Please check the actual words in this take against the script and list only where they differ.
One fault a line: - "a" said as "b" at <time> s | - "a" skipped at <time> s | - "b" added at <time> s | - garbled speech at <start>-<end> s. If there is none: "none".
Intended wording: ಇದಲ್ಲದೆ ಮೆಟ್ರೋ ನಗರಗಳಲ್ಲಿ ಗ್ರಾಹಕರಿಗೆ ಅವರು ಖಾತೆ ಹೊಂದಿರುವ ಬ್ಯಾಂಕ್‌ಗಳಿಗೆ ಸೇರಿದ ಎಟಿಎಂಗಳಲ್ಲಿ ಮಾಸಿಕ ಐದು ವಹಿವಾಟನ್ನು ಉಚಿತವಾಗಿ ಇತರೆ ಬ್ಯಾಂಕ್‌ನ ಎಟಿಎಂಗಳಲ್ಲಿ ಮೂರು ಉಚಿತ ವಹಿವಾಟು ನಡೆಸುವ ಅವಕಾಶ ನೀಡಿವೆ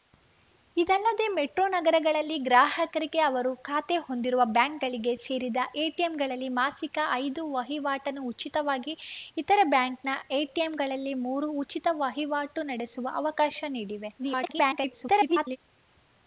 - garbled speech at 14.2-15.6 s